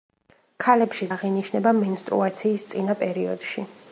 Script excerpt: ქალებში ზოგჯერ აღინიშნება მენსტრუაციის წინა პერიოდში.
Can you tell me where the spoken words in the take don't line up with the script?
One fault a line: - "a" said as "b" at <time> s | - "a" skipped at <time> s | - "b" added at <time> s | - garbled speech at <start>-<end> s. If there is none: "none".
- "ზოგჯერ" skipped at 1.1 s